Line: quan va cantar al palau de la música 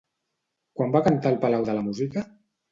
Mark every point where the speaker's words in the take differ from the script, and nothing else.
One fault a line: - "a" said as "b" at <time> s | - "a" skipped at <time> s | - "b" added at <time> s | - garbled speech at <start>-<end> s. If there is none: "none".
none